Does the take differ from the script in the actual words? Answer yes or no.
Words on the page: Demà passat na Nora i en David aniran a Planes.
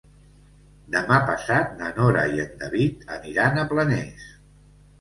no